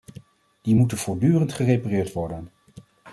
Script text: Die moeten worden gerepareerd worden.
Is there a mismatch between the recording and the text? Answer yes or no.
yes